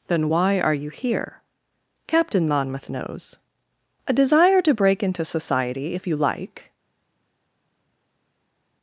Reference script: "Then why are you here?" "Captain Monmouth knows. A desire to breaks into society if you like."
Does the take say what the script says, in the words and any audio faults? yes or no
no